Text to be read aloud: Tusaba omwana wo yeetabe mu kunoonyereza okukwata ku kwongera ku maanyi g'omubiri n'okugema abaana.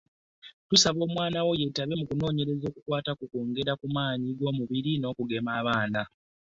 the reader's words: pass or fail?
pass